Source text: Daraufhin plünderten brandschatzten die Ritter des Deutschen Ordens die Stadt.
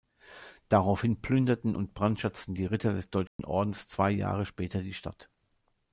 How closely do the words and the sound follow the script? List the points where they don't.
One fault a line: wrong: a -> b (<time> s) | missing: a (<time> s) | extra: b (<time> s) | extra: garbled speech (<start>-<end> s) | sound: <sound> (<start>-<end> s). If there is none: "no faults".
extra: und (1.7 s)
sound: dropout (3.3-3.4 s)
extra: zwei Jahre später (3.9 s)